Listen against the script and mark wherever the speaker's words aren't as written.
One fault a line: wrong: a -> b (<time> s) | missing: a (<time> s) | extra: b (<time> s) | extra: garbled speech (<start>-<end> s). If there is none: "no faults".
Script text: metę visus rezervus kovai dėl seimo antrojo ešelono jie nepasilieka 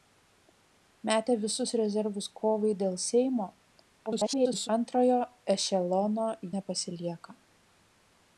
extra: garbled speech (4.1-4.7 s)
missing: jie (6.3 s)